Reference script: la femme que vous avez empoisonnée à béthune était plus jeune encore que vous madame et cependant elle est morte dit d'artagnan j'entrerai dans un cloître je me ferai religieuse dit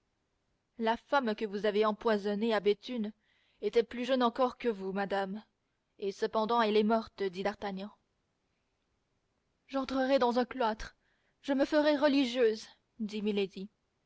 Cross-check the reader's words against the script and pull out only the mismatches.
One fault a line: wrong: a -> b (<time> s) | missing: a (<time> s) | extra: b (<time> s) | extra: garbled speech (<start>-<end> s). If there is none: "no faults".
no faults